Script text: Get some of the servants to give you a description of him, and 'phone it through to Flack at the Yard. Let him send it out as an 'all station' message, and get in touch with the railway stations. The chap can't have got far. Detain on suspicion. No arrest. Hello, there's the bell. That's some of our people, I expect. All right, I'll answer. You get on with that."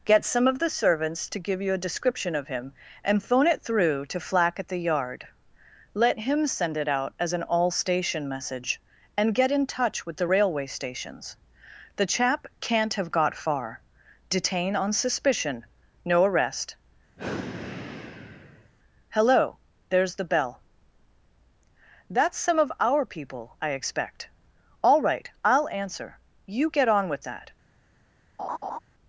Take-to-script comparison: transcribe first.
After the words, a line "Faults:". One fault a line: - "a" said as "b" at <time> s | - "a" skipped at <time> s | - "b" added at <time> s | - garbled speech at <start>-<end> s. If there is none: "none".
Get some of the servants to give you a description of him, and 'phone it through to Flack at the Yard. Let him send it out as an 'all station' message, and get in touch with the railway stations. The chap can't have got far. Detain on suspicion. No arrest. Hello, there's the bell. That's some of our people, I expect. All right, I'll answer. You get on with that."
Faults:
none